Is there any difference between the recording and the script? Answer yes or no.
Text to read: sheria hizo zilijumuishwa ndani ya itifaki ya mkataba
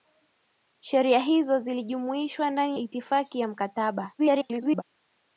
yes